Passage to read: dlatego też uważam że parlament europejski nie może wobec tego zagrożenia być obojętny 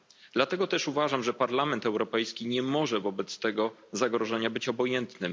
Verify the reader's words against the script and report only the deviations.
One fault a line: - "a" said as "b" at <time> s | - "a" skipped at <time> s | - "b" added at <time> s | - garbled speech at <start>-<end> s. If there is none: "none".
none